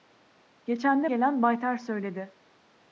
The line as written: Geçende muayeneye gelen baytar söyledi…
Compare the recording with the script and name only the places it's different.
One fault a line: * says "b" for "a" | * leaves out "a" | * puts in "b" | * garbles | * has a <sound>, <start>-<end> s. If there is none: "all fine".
* leaves out "muayeneye"